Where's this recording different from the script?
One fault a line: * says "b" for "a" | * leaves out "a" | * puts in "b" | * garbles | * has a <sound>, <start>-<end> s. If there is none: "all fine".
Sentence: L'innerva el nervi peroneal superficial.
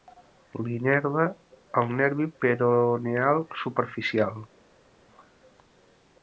all fine